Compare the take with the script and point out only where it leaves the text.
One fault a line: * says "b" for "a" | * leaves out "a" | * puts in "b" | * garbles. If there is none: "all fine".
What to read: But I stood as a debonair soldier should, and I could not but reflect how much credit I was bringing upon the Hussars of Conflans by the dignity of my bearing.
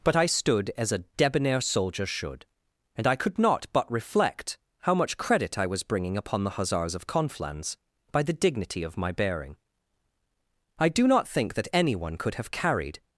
* puts in "I do not think that anyone could have carried"